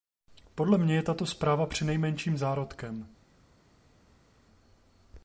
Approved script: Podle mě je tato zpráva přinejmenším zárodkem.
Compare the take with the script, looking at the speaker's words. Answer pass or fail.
pass